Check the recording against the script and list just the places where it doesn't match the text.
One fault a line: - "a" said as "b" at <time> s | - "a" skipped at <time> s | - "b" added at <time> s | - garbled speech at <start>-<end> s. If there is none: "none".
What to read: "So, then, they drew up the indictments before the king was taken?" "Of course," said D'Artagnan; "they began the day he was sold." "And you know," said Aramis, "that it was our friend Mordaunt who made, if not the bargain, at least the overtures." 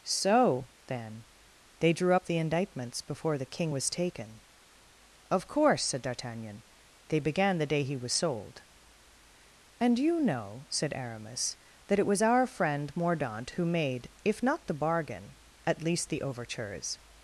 none